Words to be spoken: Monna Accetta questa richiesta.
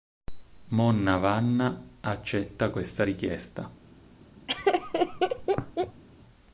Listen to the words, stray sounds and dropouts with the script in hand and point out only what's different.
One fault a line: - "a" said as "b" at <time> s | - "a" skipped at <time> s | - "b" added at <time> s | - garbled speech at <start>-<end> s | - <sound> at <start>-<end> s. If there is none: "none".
- "Vanna" added at 1.2 s
- laugh at 4.5-6.0 s